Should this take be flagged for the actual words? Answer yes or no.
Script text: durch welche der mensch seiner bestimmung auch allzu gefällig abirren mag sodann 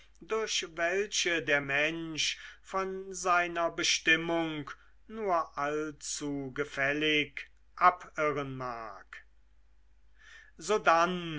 yes